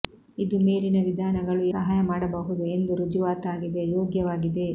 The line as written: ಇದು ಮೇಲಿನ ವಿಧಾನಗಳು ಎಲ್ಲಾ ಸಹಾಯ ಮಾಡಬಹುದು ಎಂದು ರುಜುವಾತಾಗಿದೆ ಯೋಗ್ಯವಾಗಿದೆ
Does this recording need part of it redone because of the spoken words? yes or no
yes